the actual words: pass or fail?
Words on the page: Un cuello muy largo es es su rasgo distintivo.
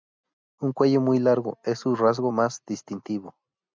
fail